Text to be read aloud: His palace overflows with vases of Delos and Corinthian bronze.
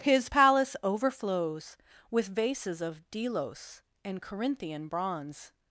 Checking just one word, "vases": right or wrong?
right